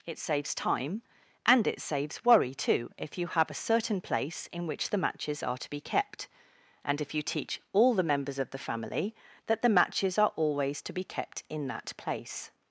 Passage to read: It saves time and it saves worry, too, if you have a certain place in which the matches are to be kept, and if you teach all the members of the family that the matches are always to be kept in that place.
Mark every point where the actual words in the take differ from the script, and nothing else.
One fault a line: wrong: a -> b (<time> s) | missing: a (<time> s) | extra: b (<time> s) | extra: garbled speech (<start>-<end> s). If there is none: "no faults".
no faults